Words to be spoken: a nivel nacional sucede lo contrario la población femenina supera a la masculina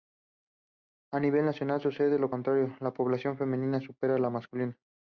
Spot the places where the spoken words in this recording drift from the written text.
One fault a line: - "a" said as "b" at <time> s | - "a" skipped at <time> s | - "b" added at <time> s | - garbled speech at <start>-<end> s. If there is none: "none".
none